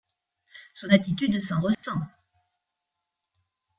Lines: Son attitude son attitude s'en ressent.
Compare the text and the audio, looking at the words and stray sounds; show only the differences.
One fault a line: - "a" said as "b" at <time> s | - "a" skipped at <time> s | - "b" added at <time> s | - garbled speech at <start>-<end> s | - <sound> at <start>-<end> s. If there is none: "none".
- "son attitude" skipped at 1.4 s
- dropout at 1.7-1.8 s